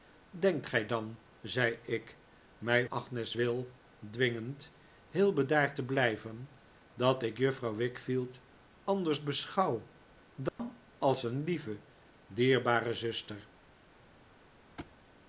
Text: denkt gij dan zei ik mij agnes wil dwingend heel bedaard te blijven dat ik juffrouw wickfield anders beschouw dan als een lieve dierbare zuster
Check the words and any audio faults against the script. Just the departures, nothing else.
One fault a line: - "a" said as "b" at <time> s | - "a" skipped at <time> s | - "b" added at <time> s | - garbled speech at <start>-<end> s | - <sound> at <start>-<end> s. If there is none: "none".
- dropout at 10.5-10.6 s
- thud at 14.8-15.0 s